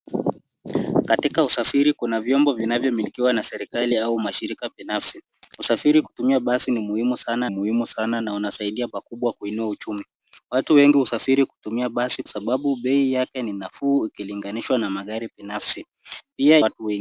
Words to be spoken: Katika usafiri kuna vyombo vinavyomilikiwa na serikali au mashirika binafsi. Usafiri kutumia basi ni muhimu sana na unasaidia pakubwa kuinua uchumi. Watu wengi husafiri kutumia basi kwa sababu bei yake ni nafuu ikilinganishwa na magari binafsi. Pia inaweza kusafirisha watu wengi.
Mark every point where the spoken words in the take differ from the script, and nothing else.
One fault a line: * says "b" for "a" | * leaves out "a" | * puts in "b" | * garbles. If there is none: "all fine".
* puts in "muhimu sana"
* leaves out "kwa"
* leaves out "inaweza kusafirisha"